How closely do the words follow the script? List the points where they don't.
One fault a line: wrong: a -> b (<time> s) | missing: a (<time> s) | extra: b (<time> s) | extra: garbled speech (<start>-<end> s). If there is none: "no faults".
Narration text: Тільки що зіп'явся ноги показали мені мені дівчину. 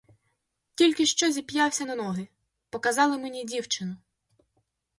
extra: на (1.8 s)
missing: мені (3.4 s)